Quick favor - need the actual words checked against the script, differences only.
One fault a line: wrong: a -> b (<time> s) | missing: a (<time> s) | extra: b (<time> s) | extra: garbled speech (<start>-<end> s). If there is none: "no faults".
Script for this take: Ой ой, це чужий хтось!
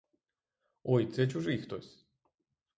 missing: ой (1.1 s)